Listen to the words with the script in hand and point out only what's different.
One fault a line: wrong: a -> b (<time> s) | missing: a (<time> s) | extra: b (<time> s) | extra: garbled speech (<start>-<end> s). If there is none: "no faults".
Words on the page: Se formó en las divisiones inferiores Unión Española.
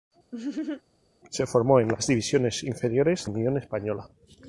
no faults